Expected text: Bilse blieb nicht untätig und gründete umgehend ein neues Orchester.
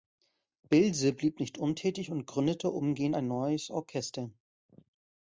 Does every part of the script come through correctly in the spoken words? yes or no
yes